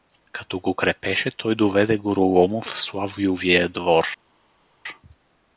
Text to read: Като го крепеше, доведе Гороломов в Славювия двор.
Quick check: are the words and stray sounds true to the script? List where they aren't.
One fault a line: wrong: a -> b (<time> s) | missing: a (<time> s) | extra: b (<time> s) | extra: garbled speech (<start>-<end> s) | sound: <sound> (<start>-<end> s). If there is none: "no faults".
extra: той (1.3 s)